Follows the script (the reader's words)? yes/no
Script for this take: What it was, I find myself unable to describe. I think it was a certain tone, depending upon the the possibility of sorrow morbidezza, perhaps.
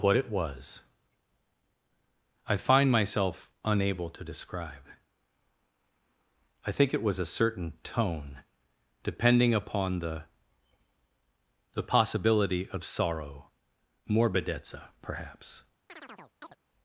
yes